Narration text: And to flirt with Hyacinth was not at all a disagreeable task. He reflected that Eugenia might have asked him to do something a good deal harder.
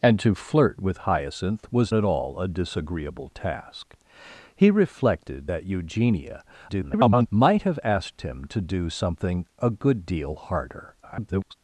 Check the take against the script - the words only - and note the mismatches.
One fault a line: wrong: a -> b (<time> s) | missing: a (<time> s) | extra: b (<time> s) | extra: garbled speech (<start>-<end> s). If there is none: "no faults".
missing: not (1.9 s)
extra: garbled speech (6.7-7.3 s)
extra: garbled speech (11.0-11.5 s)